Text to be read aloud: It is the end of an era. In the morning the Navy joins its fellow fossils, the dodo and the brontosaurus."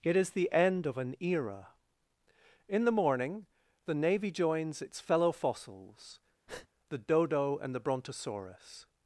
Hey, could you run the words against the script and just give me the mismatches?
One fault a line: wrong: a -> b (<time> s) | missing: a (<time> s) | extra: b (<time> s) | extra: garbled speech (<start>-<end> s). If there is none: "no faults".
no faults